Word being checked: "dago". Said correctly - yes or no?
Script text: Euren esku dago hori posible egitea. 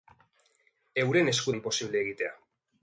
no